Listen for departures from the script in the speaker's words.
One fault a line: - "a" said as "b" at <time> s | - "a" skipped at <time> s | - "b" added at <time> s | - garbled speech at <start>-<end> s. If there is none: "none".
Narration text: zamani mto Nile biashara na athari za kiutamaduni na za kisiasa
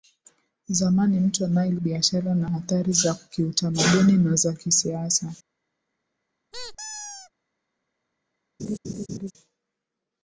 none